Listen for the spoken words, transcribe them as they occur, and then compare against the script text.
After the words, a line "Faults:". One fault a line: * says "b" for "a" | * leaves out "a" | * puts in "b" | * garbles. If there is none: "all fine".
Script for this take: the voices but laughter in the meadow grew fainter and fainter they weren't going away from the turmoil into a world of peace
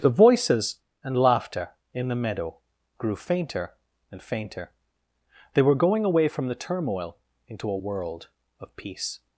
the voices and laughter in the meadow grew fainter and fainter they were going away from the turmoil into a world of peace
Faults:
* says "and" for "but"
* says "were" for "weren't"